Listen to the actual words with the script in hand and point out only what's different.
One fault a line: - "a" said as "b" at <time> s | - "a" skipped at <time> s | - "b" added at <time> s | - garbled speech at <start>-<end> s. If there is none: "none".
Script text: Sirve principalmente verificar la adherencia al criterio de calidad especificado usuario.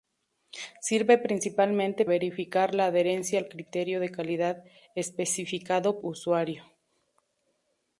none